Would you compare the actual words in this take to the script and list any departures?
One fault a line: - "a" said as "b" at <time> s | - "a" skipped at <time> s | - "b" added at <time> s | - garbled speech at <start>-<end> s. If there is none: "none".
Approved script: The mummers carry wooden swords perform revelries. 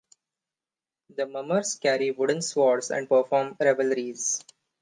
- "and" added at 2.9 s